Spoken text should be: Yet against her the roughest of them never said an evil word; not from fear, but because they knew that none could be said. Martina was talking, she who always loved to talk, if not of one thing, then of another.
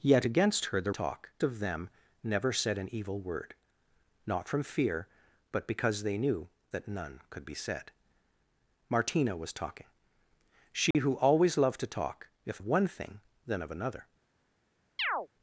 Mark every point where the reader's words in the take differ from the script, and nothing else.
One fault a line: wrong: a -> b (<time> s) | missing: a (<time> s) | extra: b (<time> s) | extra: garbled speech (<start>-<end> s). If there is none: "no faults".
wrong: roughest -> talk (0.9 s)
missing: not (12.6 s)